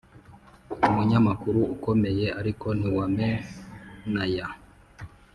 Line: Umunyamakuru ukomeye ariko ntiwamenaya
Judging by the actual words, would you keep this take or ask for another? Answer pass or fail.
pass